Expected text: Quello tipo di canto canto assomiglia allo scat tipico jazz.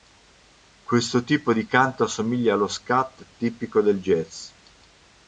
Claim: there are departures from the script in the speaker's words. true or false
true